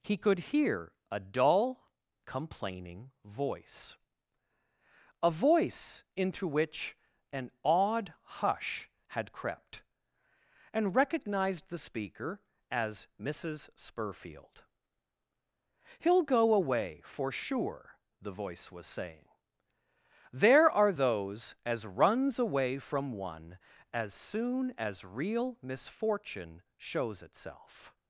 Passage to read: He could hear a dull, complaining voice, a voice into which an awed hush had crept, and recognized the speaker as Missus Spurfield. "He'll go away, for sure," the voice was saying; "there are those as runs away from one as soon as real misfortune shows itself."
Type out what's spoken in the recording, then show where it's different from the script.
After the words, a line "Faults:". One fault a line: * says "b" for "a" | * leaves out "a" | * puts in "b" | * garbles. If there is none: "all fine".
He could hear a dull, complaining voice, a voice into which an awed hush had crept, and recognized the speaker as Missus Spurfield. "He'll go away, for sure," the voice was saying; "there are those as runs away from one as soon as real misfortune shows itself."
Faults:
all fine